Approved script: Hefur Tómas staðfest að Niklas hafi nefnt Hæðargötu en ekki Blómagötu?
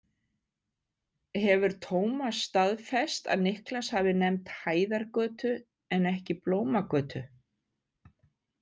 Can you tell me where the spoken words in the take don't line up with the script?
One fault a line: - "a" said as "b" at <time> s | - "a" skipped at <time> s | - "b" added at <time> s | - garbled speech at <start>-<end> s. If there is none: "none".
none